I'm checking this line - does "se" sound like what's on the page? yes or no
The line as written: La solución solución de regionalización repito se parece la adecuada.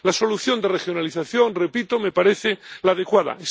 no